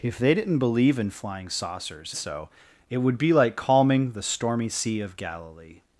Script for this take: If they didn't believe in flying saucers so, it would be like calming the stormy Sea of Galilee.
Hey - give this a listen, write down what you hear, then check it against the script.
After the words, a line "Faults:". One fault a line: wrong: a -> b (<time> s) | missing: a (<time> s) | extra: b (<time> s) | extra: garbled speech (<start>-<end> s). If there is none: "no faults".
If they didn't believe in flying saucers so, it would be like calming the stormy Sea of Galilee.
Faults:
no faults